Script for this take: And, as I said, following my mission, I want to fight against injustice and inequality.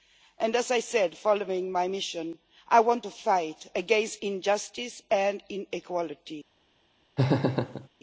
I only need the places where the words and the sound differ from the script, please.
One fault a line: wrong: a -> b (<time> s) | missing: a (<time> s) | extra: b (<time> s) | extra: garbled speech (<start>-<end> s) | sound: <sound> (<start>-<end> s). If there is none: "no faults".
sound: laugh (7.2-7.9 s)